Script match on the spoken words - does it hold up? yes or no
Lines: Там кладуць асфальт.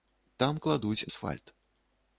yes